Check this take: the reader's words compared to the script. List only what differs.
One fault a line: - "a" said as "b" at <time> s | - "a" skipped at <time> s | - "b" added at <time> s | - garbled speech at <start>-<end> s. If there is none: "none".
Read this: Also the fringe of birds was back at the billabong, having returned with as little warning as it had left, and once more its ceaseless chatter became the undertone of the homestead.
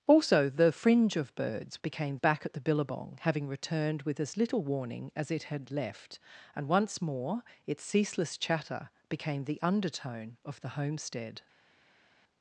- "was" said as "became" at 1.8 s